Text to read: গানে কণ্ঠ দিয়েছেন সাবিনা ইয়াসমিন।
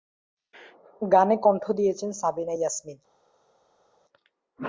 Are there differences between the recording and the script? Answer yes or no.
no